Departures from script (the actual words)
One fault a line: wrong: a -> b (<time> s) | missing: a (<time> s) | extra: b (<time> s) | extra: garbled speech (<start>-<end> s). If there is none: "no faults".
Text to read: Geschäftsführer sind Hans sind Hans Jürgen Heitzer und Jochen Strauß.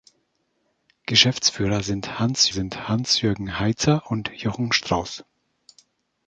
no faults